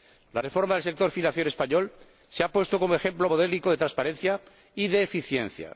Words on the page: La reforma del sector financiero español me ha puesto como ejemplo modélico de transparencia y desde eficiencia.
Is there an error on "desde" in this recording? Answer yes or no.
yes